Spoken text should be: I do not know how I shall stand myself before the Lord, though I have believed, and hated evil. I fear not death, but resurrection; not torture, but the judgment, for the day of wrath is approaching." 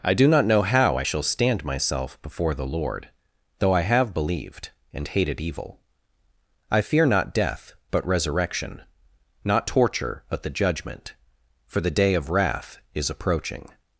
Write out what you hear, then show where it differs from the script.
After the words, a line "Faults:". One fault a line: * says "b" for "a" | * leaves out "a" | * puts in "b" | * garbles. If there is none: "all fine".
I do not know how I shall stand myself before the Lord, though I have believed, and hated evil. I fear not death, but resurrection; not torture, but the judgment, for the day of wrath is approaching."
Faults:
all fine